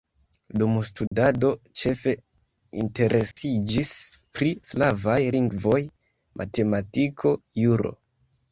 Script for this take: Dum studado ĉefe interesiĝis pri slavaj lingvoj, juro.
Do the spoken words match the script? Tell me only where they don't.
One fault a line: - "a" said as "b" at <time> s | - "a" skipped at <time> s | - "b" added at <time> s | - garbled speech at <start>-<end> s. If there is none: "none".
- "matematiko" added at 6.4 s